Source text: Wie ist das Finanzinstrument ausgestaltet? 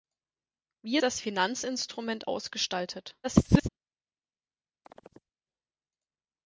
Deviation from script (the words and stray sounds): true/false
true